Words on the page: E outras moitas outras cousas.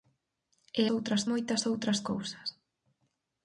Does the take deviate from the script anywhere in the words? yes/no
no